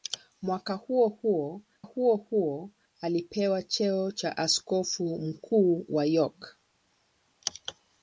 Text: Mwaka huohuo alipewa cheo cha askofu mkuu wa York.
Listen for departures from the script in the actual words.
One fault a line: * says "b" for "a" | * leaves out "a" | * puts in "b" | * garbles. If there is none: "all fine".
* puts in "huohuo"